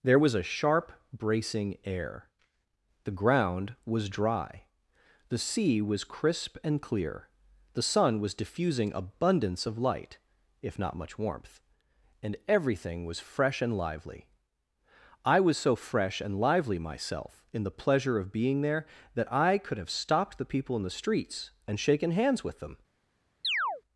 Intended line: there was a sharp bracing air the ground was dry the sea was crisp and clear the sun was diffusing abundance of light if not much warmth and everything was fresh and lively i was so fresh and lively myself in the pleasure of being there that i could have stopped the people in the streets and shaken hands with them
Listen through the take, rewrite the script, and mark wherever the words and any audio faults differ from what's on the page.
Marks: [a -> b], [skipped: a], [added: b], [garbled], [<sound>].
there was a sharp bracing air the ground was dry the sea was crisp and clear the sun was diffusing abundance of light if not much warmth and everything was fresh and lively i was so fresh and lively myself in the pleasure of being there that i could have stopped the people in the streets and shaken hands with them [chirp]